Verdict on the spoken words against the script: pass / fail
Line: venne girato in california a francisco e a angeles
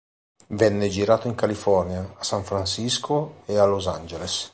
fail